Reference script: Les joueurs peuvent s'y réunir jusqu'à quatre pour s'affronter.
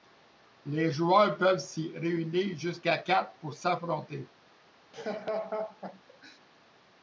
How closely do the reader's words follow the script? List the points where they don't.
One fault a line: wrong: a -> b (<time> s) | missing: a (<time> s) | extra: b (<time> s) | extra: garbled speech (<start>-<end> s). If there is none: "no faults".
no faults